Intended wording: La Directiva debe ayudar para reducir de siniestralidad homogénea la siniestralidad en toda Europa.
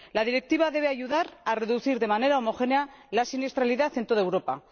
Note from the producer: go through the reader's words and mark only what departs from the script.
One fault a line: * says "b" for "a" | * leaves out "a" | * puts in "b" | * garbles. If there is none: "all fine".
* says "a" for "para"
* says "manera" for "siniestralidad"